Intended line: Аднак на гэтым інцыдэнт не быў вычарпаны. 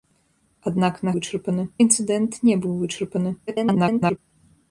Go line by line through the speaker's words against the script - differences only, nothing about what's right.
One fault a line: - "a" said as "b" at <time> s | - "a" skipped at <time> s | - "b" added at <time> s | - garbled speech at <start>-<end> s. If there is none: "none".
- "гэтым" said as "вычарпаны" at 1.2 s
- garbled speech at 3.5-4.2 s